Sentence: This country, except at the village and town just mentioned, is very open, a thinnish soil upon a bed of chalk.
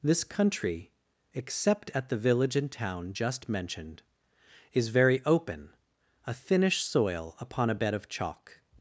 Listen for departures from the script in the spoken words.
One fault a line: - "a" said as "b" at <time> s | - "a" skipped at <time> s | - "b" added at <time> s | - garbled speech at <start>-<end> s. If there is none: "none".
none